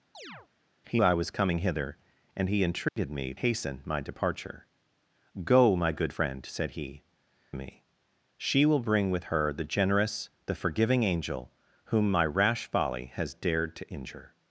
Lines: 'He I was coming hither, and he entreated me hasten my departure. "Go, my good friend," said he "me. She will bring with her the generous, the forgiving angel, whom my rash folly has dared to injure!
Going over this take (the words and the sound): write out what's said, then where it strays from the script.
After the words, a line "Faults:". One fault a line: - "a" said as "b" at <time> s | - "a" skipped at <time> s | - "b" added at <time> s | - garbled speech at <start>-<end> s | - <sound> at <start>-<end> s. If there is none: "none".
'He I was coming hither, and he entreated me hasten my departure. "Go, my good friend," said he "me. She will bring with her the generous, the forgiving angel, whom my rash folly has dared to injure!
Faults:
- chirp at 0.1-0.5 s
- dropout at 2.9-3.0 s